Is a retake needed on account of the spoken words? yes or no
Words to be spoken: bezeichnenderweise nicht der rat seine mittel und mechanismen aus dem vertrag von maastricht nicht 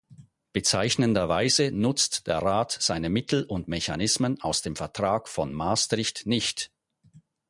yes